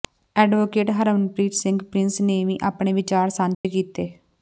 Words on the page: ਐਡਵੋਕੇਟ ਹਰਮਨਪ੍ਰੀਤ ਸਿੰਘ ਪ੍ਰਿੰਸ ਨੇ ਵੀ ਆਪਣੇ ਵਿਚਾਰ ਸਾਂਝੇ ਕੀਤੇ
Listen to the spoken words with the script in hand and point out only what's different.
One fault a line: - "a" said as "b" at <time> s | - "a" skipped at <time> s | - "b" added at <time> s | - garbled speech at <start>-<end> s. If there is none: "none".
none